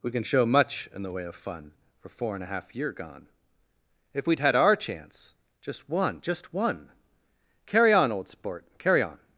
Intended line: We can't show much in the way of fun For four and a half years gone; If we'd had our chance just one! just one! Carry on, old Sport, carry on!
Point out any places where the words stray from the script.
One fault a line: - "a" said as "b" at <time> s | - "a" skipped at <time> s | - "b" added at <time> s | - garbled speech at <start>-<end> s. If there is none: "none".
- "can't" said as "can" at 0.1 s
- "years" said as "year" at 2.8 s